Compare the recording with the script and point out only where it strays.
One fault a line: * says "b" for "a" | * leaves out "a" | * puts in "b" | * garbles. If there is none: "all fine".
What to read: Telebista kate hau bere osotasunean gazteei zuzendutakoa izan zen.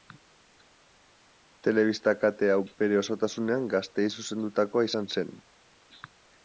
all fine